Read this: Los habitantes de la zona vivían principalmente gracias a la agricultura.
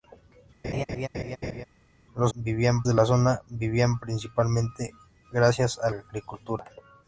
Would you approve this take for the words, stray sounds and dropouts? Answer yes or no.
no